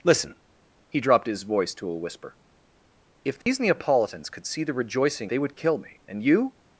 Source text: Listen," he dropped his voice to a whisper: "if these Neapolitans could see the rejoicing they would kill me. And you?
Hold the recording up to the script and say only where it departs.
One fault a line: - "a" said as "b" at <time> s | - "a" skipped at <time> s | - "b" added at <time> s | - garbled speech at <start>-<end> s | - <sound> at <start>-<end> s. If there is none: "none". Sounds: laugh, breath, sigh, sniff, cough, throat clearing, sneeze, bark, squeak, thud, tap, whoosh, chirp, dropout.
- dropout at 3.4-3.5 s